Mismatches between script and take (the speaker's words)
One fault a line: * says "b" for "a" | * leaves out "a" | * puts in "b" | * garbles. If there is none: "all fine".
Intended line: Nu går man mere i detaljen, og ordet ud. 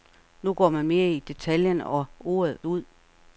all fine